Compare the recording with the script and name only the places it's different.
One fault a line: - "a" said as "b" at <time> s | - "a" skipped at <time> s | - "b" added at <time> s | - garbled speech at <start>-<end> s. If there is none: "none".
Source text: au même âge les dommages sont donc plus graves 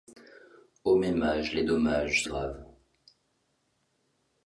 - "sont donc plus" skipped at 2.2 s